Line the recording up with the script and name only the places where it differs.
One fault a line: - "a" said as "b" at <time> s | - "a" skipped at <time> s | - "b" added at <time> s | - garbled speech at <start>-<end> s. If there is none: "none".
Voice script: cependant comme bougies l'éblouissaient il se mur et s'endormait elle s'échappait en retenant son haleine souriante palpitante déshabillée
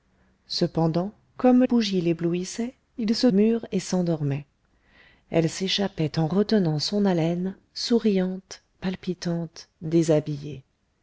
none